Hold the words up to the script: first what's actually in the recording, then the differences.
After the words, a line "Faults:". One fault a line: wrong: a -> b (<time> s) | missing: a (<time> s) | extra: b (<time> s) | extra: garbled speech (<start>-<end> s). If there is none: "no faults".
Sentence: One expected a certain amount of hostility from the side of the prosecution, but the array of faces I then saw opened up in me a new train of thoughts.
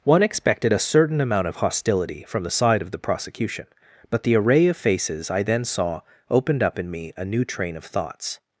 One expected a certain amount of hostility from the side of the prosecution, but the array of faces I then saw opened up in me a new train of thoughts.
Faults:
no faults